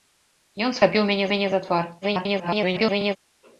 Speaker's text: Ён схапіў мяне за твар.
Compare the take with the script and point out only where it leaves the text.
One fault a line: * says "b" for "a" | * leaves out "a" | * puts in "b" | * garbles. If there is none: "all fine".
* puts in "мяне"
* garbles